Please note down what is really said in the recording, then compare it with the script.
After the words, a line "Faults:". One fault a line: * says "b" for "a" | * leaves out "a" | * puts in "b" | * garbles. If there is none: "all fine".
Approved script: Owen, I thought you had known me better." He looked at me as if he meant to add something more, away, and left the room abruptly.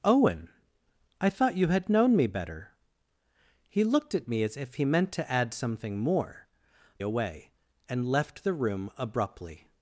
Owen, I thought you had known me better." He looked at me as if he meant to add something more, away, and left the room abruptly.
Faults:
all fine